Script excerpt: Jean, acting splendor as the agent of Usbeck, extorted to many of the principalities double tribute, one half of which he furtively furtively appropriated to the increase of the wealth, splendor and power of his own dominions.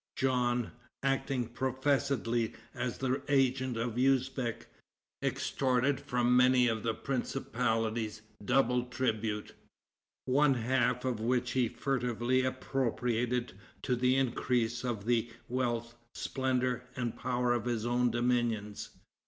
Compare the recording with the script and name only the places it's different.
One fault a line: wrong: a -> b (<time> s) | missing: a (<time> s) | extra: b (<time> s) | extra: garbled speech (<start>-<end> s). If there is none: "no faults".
wrong: splendor -> professedly (1.5 s)
wrong: to -> from (6.0 s)
missing: furtively (12.4 s)